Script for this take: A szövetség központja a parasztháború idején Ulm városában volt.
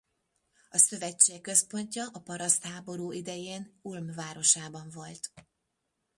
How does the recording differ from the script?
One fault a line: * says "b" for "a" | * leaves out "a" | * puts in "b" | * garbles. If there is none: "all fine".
all fine